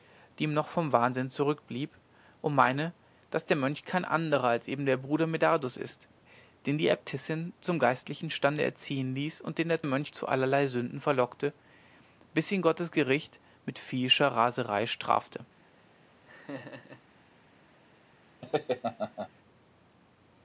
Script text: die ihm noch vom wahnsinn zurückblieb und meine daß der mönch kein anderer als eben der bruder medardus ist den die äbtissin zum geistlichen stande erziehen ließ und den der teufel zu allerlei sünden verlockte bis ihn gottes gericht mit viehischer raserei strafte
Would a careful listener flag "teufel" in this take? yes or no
yes